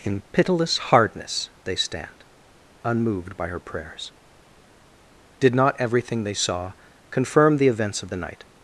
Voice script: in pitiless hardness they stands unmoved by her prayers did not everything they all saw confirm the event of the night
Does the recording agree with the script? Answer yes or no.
no